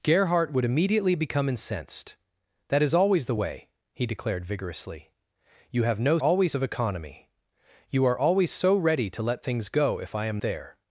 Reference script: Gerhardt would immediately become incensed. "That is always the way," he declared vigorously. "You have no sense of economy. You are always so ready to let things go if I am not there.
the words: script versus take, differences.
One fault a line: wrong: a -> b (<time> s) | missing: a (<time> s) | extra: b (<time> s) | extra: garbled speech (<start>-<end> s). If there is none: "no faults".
wrong: sense -> always (6.2 s)
missing: not (10.4 s)